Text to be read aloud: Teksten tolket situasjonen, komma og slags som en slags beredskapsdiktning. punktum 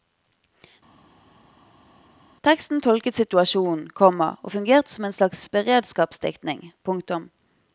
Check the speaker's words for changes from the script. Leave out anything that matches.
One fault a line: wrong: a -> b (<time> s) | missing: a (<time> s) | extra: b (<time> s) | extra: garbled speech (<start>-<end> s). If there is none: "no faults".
wrong: slags -> fungerte (4.5 s)